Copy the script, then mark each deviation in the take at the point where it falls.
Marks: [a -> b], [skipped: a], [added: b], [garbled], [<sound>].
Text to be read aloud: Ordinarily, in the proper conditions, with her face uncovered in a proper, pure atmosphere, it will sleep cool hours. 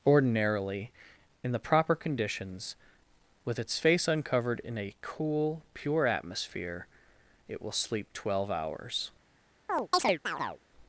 Ordinarily, in the proper conditions, with [her -> its] face uncovered in a [proper, -> cool] pure atmosphere, it will sleep [cool -> twelve] hours. [chirp]